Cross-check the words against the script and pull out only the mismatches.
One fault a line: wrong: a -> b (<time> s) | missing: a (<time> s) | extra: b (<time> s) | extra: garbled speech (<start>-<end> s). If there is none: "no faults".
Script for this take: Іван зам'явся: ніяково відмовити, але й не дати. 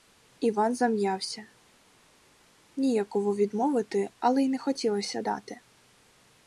extra: хотілося (4.6 s)